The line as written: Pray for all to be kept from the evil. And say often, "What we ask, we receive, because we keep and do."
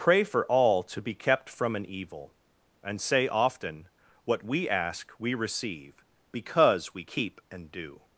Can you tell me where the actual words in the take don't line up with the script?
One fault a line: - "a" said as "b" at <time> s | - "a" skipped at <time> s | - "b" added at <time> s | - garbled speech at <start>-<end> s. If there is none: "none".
- "the" said as "an" at 1.8 s